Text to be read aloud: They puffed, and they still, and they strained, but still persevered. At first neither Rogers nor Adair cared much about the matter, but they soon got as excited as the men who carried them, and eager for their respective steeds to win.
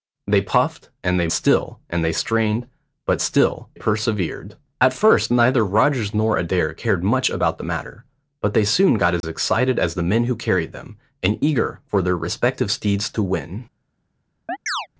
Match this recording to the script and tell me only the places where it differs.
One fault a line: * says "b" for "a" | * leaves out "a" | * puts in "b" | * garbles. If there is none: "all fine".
all fine